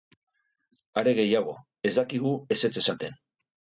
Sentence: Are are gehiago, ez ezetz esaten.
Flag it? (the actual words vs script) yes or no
yes